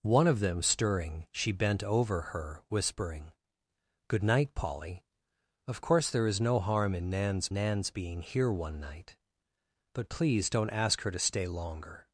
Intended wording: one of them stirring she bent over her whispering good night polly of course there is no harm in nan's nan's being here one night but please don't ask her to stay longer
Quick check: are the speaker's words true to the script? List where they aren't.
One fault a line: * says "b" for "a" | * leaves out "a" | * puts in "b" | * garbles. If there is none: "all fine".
all fine